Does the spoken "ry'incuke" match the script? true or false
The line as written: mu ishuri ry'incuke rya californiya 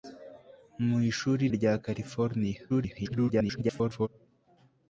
false